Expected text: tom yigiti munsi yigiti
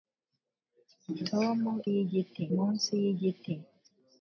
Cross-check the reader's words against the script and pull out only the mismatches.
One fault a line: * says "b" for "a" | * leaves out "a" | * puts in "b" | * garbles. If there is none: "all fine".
all fine